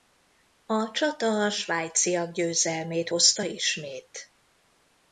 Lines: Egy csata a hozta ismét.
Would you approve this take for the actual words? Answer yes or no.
no